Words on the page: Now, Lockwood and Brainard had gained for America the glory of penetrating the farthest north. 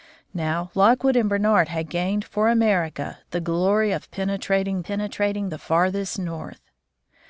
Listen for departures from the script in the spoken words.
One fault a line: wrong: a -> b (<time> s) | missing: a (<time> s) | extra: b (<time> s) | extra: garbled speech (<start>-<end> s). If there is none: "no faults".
extra: penetrating (4.8 s)